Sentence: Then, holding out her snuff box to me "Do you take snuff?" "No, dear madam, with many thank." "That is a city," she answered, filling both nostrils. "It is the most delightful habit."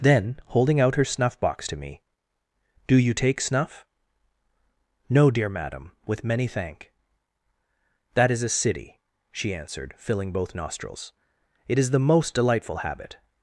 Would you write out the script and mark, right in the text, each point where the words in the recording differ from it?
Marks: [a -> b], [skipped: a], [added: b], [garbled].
Then, holding out her snuff box to me "Do you take snuff?" "No, dear madam, with many thank." "That is a city," she answered, filling both nostrils. "It is the most delightful habit."